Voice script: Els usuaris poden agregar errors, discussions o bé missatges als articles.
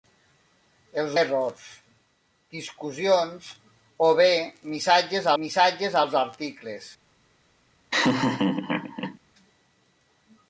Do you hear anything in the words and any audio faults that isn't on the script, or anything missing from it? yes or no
yes